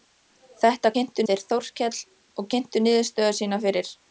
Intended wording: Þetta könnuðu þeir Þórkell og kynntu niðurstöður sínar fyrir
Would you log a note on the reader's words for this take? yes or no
yes